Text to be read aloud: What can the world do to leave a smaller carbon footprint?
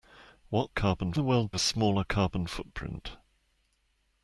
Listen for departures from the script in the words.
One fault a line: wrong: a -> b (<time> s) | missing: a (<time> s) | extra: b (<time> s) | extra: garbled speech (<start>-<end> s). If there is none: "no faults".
wrong: can -> carbon (0.7 s)
missing: do to leave (1.5 s)